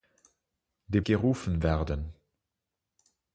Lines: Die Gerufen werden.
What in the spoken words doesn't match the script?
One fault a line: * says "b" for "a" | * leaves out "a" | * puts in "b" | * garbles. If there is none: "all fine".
all fine